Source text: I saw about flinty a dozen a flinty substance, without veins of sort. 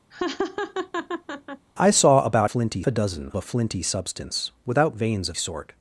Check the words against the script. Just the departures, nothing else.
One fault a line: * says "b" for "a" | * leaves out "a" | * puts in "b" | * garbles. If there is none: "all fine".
all fine